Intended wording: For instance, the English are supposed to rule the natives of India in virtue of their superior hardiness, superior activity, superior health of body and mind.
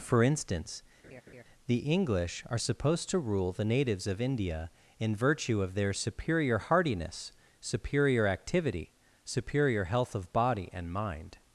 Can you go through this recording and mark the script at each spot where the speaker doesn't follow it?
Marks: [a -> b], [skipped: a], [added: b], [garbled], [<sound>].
For instance, [laugh] the English are supposed to rule the natives of India in virtue of their superior hardiness, superior activity, superior health of body and mind.